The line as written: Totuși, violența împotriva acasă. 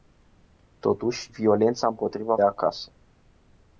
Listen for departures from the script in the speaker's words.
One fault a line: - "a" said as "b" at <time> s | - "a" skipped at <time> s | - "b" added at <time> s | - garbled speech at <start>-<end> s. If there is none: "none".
none